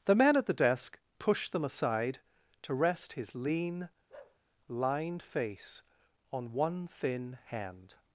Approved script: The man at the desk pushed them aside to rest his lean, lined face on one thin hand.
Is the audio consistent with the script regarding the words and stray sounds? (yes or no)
no